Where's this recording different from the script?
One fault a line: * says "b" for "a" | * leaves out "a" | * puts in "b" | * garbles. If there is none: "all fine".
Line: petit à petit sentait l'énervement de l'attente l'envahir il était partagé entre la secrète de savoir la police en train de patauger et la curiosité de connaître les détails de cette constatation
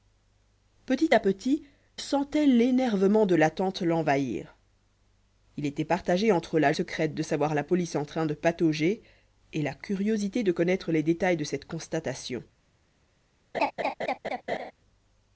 all fine